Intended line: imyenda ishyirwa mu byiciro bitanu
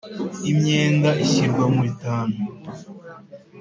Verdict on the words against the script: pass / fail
fail